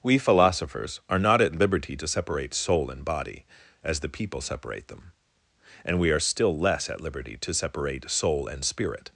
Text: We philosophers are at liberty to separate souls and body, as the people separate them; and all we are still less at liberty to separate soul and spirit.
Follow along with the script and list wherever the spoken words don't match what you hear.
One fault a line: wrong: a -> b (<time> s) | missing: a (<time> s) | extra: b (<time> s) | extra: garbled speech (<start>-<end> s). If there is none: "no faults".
extra: not (1.2 s)
wrong: souls -> soul (2.5 s)
missing: all (6.0 s)